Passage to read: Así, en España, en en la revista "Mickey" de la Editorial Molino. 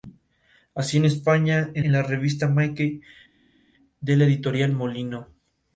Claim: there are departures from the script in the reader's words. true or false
false